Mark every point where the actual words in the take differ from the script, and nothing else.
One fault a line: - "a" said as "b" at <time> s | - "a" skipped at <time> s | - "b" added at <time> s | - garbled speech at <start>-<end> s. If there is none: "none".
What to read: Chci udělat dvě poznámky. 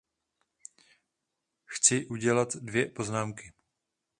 none